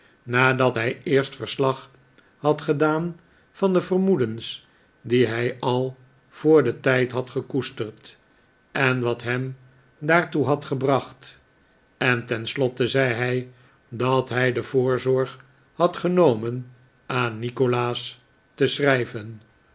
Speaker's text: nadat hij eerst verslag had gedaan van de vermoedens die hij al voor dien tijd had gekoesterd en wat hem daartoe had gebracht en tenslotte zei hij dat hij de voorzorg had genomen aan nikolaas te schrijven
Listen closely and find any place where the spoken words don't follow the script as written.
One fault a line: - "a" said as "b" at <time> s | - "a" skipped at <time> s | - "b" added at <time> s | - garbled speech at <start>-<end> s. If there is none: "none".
none